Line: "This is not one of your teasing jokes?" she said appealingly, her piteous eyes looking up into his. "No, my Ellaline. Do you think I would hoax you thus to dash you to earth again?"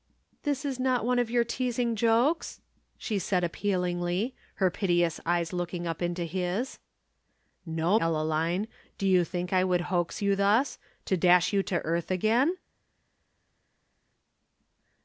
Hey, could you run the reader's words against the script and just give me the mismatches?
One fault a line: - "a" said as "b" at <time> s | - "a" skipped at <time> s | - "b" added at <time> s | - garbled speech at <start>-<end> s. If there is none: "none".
- "my" skipped at 8.0 s